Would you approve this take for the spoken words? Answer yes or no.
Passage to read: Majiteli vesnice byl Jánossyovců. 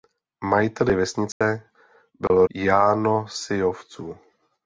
yes